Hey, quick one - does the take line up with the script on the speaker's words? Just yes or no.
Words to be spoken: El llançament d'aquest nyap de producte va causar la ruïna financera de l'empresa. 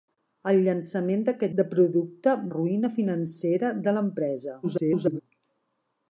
no